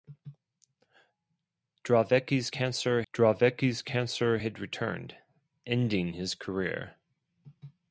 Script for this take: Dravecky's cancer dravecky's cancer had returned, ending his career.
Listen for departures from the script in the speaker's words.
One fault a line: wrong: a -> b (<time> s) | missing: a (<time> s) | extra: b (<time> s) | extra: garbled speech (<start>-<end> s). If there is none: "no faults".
no faults